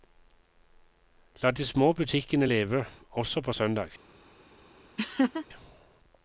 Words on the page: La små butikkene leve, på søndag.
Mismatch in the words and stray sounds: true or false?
true